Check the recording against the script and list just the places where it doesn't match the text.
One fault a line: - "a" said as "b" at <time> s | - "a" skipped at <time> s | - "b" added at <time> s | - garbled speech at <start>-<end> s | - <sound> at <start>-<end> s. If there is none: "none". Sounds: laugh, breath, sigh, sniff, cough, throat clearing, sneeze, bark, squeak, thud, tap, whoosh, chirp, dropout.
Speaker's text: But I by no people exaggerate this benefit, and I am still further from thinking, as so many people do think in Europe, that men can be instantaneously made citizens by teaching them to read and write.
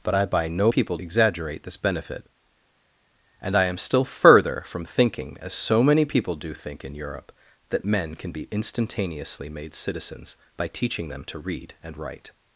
none